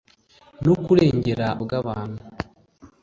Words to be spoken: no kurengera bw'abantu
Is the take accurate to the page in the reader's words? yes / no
yes